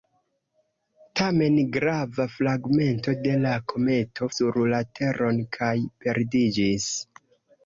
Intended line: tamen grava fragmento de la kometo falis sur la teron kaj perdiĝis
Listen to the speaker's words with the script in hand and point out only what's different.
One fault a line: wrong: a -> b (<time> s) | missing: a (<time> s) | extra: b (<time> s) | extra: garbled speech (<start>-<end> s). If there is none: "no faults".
missing: falis (4.3 s)